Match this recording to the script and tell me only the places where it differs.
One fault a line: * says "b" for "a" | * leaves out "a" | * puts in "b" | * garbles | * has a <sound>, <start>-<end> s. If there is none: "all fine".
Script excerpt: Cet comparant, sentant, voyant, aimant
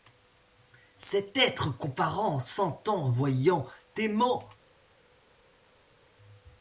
* puts in "être"